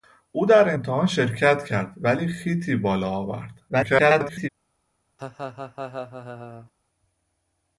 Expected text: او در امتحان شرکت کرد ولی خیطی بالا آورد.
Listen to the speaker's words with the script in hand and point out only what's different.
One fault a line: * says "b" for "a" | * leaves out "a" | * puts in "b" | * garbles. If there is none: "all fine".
* garbles